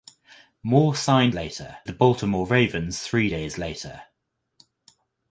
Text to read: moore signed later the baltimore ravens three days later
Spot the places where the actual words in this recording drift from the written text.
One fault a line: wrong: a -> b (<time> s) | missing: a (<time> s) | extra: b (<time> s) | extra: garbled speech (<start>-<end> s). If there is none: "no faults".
no faults